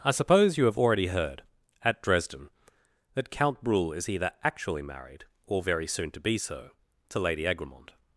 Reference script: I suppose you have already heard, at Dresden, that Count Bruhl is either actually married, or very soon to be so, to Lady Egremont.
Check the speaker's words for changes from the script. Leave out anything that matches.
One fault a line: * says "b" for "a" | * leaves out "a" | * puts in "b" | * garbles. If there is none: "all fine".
all fine